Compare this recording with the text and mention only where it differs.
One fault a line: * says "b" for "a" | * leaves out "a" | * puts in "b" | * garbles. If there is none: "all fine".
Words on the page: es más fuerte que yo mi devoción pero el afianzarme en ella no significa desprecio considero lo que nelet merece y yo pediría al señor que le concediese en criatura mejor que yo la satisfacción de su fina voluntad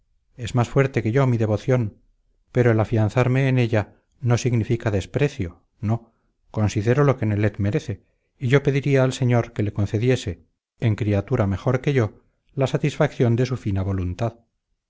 * puts in "no"